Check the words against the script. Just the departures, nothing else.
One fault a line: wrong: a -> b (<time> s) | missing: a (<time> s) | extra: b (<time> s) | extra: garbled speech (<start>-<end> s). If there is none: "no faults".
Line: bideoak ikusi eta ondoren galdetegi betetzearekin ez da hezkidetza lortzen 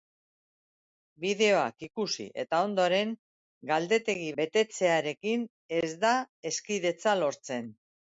no faults